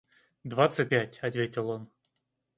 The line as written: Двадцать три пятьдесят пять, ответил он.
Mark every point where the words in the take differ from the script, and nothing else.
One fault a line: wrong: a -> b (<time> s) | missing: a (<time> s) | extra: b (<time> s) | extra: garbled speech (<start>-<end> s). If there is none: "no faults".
missing: три пятьдесят (0.9 s)